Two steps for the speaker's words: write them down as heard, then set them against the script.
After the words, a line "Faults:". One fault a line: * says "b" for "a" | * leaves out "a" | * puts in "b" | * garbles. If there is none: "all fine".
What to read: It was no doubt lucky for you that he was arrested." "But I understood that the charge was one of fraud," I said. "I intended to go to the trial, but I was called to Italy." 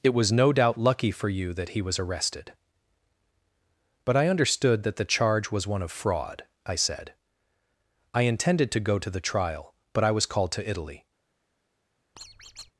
It was no doubt lucky for you that he was arrested." "But I understood that the charge was one of fraud," I said. "I intended to go to the trial, but I was called to Italy."
Faults:
all fine